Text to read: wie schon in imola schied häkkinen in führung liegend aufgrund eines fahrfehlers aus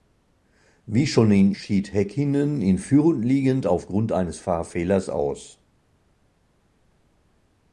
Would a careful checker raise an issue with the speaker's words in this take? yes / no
yes